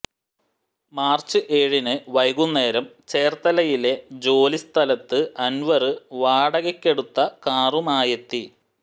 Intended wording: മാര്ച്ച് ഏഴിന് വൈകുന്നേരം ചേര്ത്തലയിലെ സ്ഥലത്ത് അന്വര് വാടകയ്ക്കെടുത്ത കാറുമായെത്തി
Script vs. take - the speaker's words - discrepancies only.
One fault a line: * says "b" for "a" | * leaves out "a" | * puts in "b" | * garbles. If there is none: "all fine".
* puts in "ജോലി"